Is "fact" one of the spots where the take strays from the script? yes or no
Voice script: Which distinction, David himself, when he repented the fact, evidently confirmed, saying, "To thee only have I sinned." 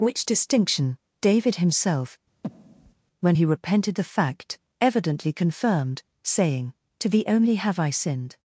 no